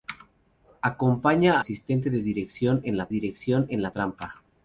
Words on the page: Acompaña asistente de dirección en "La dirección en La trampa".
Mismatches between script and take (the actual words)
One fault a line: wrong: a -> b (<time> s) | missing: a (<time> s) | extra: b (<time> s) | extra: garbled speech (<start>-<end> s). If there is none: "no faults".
no faults